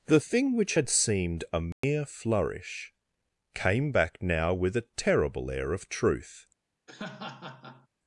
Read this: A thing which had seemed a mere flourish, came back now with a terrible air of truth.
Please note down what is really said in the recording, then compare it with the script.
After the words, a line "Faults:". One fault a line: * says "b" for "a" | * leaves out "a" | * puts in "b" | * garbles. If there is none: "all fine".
The thing which had seemed a mere flourish, came back now with a terrible air of truth.
Faults:
* says "The" for "A"